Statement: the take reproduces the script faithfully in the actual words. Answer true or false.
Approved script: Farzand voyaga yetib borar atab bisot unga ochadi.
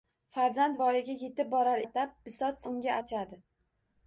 true